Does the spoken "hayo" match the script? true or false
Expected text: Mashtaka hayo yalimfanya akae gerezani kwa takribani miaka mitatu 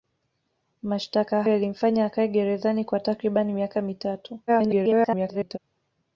false